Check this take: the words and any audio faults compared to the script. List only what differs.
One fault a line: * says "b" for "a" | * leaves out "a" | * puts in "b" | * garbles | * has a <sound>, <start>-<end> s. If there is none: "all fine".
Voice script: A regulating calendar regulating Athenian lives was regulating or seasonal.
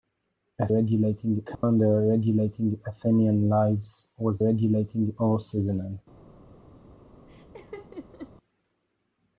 * has a dropout, 1.5-1.6 s
* has a laugh, 7.3-8.3 s